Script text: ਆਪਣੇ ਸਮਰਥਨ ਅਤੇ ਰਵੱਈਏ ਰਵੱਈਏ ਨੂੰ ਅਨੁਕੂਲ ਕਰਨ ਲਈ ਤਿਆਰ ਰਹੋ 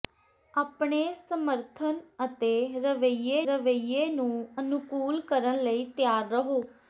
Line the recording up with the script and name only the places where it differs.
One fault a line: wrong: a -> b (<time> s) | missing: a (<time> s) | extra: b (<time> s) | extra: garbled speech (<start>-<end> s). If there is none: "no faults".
no faults